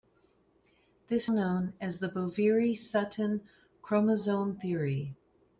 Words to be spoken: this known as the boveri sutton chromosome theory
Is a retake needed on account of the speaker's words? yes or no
no